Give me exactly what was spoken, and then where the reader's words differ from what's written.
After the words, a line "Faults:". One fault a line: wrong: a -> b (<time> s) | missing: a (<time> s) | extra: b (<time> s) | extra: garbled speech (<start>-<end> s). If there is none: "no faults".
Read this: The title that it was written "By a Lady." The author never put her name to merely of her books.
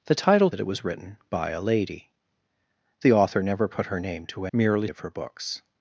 The title that it was written "By a Lady." The author never put her name to merely of her books.
Faults:
no faults